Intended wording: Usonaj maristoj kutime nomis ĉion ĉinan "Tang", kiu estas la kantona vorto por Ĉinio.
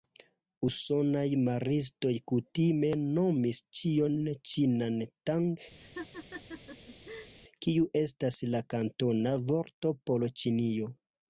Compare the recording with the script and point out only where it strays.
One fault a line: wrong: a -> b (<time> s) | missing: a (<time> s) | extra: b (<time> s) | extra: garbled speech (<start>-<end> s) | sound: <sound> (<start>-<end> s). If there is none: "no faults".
sound: laugh (5.8-7.3 s)